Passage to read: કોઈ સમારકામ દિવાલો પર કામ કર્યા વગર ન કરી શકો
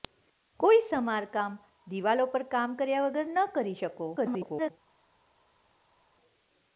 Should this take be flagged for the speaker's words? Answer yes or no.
yes